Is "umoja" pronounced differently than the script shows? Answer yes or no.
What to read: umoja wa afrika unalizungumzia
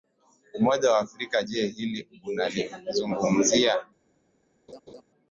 no